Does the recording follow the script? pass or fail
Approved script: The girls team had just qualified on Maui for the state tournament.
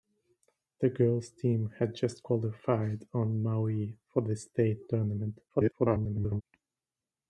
fail